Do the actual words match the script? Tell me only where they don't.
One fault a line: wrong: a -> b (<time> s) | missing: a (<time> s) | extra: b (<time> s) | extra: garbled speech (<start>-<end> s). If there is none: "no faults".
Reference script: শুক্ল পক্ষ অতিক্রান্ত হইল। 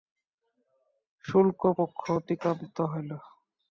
no faults